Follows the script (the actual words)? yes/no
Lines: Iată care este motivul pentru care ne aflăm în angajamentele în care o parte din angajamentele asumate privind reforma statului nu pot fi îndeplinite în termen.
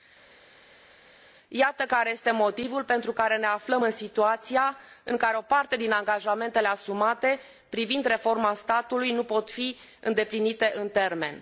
no